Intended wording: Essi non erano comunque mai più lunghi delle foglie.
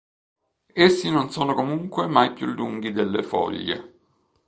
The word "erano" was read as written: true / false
false